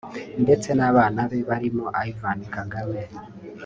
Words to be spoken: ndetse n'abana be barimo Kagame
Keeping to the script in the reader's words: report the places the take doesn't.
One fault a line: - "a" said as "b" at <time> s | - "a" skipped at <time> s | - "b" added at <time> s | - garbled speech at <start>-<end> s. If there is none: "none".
- "Ivan" added at 2.1 s